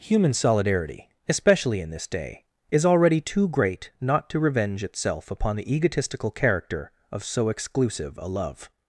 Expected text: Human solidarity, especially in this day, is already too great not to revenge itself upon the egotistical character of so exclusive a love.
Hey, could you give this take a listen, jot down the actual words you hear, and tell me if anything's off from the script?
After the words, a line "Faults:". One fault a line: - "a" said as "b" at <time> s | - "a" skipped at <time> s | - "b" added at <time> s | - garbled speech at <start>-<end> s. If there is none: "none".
Human solidarity, especially in this day, is already too great not to revenge itself upon the egotistical character of so exclusive a love.
Faults:
none